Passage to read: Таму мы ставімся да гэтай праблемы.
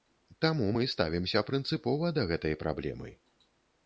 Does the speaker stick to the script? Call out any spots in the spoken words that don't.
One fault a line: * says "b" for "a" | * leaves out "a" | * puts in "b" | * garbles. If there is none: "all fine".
* puts in "прынцыпова"